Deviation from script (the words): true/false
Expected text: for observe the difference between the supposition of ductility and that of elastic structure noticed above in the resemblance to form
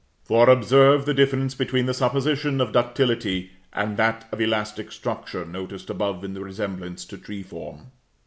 true